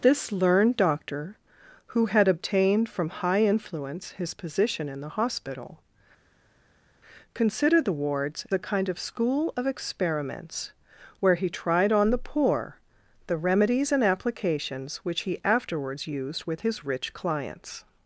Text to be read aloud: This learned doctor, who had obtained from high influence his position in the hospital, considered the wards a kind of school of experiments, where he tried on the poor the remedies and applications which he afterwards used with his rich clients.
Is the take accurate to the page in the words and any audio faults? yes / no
yes